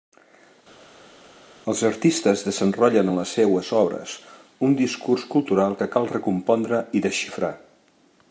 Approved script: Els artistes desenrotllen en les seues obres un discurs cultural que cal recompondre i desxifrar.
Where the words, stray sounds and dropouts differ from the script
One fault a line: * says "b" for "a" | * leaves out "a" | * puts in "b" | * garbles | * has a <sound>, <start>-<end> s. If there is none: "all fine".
all fine